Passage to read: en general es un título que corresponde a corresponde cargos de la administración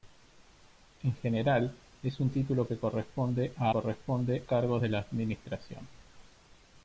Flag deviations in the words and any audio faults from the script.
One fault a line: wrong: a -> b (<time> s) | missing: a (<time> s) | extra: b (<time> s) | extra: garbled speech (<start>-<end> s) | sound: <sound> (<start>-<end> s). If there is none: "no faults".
no faults